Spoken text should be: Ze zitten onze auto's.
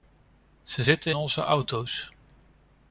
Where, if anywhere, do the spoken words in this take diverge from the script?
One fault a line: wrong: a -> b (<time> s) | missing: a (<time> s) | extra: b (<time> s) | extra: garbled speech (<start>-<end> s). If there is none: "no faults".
no faults